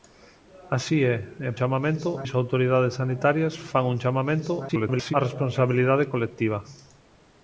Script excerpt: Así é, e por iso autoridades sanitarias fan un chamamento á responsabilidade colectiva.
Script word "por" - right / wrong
wrong